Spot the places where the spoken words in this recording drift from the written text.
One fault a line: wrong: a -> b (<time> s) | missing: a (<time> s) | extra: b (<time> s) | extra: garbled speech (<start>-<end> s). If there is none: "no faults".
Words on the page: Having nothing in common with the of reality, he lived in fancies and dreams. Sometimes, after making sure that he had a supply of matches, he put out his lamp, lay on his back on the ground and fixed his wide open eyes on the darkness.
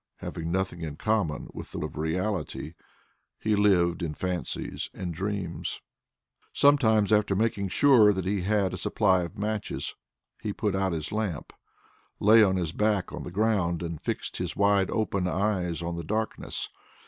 no faults